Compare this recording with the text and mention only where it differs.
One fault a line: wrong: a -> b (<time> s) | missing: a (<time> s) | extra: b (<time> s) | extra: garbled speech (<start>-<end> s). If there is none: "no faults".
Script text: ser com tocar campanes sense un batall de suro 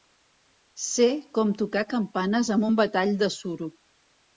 wrong: sense -> amb (2.6 s)